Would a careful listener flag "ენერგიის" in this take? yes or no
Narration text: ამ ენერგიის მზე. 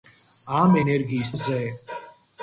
no